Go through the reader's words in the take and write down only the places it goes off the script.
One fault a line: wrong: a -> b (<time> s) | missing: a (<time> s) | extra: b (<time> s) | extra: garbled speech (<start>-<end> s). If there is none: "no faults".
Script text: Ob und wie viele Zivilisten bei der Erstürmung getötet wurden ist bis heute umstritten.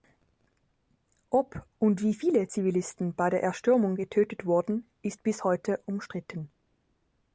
no faults